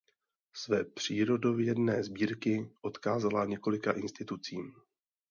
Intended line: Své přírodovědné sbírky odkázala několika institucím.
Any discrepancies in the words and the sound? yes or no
no